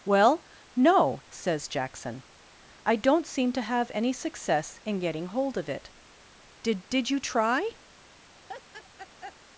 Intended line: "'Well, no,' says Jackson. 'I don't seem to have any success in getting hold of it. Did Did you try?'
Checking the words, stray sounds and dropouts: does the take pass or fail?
fail